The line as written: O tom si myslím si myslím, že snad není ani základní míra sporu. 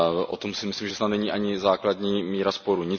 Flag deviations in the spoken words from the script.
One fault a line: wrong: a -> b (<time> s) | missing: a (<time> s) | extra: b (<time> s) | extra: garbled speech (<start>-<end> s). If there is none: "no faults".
missing: si myslím (0.9 s)